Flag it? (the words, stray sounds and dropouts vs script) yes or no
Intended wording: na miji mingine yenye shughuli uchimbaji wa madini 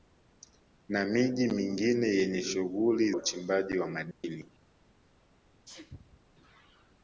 yes